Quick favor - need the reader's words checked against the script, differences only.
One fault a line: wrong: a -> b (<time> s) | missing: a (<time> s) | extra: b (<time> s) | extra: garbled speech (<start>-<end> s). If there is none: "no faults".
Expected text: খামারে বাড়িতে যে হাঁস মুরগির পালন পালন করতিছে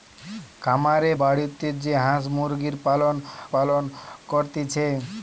no faults